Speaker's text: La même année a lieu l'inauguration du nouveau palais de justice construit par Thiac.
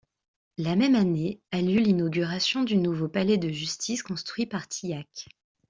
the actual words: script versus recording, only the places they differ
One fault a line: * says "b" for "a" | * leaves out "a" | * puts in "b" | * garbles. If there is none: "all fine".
all fine